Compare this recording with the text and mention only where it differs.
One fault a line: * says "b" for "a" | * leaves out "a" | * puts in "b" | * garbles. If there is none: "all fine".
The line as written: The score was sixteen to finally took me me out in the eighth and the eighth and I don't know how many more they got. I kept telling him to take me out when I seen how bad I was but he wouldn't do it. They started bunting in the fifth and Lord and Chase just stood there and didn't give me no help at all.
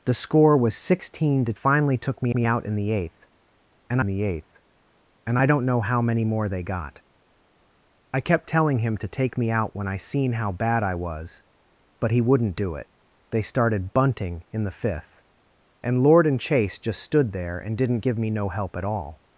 all fine